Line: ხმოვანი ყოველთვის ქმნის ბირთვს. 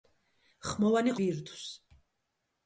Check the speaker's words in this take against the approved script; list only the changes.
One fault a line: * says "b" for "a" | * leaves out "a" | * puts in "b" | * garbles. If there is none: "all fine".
* leaves out "ყოველთვის ქმნის"